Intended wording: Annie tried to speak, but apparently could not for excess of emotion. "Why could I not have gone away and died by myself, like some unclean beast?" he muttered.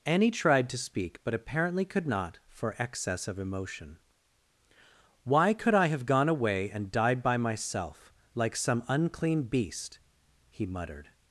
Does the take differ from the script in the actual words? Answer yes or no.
yes